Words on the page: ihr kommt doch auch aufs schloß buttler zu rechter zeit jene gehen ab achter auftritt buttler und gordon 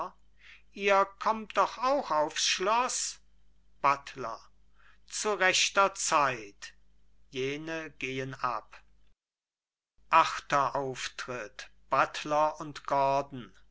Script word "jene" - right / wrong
right